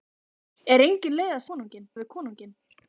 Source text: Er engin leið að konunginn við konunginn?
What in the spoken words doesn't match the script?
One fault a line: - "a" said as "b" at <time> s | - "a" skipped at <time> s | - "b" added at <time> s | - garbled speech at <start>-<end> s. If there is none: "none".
none